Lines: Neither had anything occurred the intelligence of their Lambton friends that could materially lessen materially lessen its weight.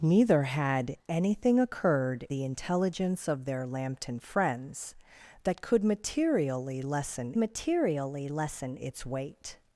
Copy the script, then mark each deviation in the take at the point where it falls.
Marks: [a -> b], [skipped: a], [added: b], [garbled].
Neither had anything occurred the intelligence of their Lambton friends that could materially lessen materially lessen its weight.